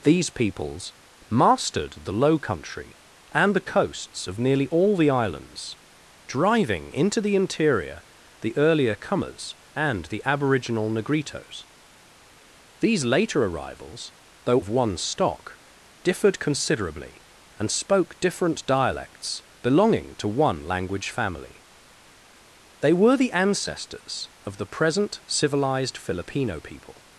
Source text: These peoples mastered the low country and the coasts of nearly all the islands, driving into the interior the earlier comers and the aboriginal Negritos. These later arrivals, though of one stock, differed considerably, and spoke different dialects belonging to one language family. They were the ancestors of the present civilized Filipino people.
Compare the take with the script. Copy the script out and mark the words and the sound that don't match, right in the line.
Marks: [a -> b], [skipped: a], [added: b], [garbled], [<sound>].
These peoples mastered the low country and the coasts of nearly all the islands, driving into the interior the earlier comers and the aboriginal Negritos. These later arrivals, though of one stock, differed considerably, and spoke different dialects belonging to one language family. They were the ancestors of the present civilized Filipino people.